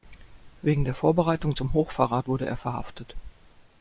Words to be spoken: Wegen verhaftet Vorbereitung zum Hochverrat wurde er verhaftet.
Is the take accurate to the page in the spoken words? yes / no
no